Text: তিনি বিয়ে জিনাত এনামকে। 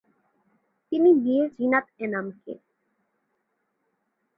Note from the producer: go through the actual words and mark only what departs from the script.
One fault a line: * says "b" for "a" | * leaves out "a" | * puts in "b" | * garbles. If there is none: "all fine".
all fine